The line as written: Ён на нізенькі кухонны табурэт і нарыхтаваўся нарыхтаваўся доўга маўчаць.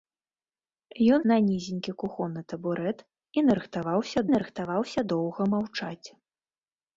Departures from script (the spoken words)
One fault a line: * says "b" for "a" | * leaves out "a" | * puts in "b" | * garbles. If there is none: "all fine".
all fine